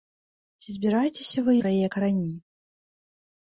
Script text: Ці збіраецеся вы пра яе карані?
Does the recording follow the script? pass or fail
pass